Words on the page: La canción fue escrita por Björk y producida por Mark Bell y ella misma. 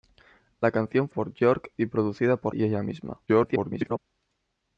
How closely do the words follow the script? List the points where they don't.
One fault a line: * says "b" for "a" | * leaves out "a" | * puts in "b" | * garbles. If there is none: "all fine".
* leaves out "fue escrita"
* leaves out "Mark Bell"
* garbles